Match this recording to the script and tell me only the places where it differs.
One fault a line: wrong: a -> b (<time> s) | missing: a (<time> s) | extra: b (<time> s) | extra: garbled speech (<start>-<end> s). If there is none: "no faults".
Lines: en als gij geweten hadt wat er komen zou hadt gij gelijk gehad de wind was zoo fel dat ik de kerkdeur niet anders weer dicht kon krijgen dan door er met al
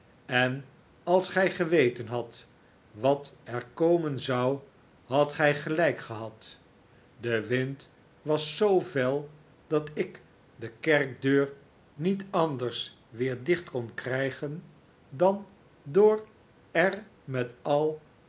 no faults